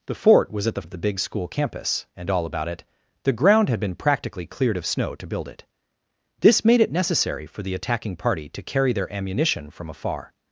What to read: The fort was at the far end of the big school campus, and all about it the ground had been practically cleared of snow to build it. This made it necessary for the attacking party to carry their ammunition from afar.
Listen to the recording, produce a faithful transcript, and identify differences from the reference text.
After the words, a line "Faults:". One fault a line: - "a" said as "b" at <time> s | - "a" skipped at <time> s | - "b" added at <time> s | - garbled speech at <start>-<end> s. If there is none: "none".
The fort was at the of the big school campus, and all about it the ground had been practically cleared of snow to build it. This made it necessary for the attacking party to carry their ammunition from afar.
Faults:
- "far end" skipped at 0.8 s